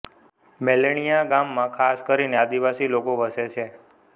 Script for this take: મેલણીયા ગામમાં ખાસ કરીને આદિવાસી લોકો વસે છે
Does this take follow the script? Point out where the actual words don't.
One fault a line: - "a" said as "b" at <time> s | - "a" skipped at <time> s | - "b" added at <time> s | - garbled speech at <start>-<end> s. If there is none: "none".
none